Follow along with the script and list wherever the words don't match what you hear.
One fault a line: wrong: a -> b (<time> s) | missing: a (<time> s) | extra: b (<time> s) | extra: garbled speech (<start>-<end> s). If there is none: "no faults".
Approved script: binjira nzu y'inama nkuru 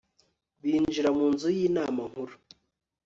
extra: mu (1.1 s)